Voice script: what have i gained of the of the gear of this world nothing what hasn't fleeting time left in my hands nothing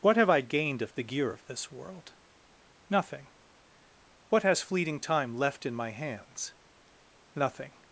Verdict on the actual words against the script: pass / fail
fail